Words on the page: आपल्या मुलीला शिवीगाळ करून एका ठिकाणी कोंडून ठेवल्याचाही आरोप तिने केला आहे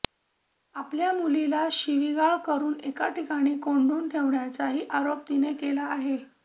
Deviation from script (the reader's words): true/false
false